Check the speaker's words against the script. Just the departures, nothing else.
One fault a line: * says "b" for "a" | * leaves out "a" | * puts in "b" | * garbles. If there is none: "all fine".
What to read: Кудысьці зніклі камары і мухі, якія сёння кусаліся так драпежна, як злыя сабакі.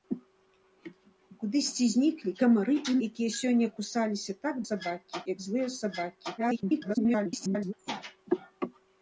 * leaves out "мухі"
* says "сабакі" for "драпежна"
* garbles